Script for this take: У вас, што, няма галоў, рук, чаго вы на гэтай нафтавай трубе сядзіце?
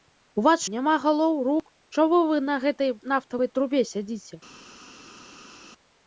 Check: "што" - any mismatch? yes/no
yes